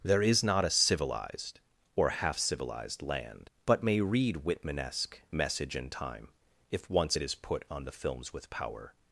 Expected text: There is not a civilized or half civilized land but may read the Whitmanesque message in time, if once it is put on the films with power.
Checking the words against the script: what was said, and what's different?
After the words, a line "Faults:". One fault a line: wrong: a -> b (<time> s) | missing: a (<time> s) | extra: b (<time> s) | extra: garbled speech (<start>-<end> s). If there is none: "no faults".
There is not a civilized or half civilized land but may read Whitmanesque message in time, if once it is put on the films with power.
Faults:
missing: the (4.4 s)